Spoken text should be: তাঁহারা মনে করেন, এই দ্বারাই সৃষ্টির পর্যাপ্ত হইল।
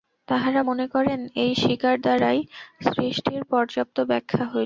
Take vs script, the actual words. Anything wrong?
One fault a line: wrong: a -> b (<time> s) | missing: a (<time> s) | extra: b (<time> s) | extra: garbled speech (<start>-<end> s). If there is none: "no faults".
extra: স্বীকার (1.5 s)
extra: ব্যাখ্যা (4.0 s)